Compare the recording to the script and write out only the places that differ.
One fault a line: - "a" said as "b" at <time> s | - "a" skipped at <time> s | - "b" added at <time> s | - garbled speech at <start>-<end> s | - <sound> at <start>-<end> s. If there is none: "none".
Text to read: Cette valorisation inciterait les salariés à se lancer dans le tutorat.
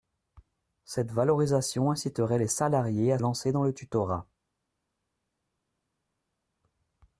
- "se" skipped at 3.2 s